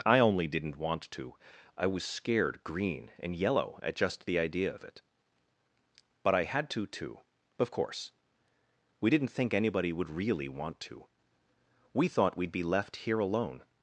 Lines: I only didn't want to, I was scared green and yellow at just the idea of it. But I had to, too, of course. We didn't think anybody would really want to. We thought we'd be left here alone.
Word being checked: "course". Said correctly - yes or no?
yes